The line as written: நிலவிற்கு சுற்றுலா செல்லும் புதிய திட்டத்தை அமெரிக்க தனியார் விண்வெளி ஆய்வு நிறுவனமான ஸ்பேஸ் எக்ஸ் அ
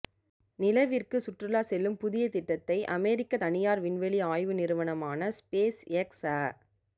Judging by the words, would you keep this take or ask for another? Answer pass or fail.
pass